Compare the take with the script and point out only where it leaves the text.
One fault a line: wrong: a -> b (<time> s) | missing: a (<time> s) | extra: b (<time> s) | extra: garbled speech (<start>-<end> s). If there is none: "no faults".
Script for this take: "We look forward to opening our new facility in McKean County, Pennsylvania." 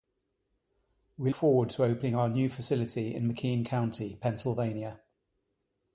missing: look (1.3 s)